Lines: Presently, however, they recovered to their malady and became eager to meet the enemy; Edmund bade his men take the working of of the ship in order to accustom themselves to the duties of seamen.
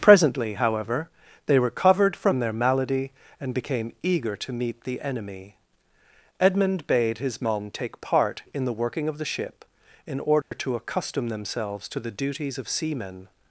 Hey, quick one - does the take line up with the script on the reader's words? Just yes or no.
no